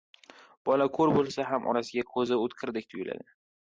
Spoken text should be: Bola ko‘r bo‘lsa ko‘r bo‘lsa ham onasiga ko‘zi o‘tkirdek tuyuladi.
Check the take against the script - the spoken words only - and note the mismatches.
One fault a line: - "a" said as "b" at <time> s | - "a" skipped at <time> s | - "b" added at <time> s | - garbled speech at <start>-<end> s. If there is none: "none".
- "ko‘r bo‘lsa" skipped at 1.4 s